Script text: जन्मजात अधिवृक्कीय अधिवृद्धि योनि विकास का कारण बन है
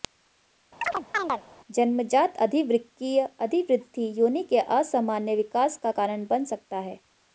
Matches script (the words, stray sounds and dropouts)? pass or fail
fail